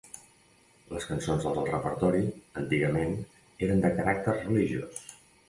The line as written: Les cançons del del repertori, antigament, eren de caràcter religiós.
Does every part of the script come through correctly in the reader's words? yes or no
yes